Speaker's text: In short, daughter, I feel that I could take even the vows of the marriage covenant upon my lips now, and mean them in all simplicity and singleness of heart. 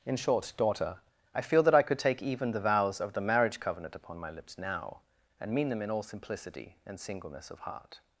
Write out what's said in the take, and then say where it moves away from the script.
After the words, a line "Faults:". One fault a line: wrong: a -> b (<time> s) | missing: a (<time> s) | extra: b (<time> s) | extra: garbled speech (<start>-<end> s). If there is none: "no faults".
In short, daughter, I feel that I could take even the vows of the marriage covenant upon my lips now, and mean them in all simplicity and singleness of heart.
Faults:
no faults